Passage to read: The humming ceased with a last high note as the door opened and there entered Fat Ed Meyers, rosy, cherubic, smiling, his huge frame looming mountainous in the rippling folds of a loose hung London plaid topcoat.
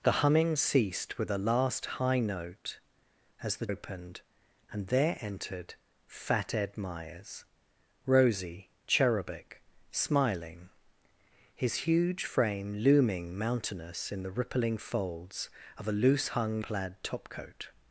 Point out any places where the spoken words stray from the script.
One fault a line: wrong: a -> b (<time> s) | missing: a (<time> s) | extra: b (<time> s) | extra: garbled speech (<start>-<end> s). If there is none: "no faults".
missing: door (3.7 s)
missing: London (16.6 s)